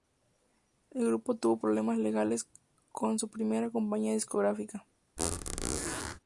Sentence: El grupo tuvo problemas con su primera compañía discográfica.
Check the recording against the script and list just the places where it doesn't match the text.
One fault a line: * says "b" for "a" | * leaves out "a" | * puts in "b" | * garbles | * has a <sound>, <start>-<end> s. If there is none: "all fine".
* puts in "legales"
* has a squeak, 5.2-6.2 s